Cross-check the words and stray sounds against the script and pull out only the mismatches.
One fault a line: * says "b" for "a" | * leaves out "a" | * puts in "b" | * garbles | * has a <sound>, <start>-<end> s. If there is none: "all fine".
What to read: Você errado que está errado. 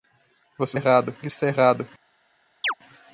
* has a chirp, 2.6-2.7 s